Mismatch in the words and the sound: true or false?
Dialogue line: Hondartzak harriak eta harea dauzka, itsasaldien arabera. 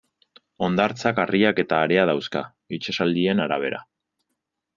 false